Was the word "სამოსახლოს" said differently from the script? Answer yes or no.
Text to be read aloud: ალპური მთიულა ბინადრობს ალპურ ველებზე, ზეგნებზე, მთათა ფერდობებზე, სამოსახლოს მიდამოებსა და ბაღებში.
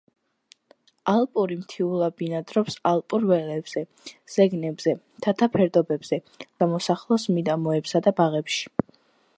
no